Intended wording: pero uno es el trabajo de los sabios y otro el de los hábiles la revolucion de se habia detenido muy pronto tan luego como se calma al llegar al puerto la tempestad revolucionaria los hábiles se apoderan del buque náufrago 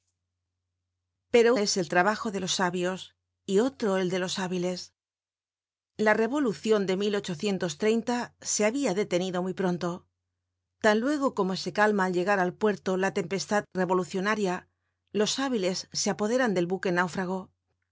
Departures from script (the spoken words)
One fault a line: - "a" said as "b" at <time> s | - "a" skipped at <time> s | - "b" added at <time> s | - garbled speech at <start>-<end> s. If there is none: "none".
- "uno" skipped at 1.6 s